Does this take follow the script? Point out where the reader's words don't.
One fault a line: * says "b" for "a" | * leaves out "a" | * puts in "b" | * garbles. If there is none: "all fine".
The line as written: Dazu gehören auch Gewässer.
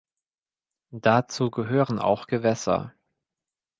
all fine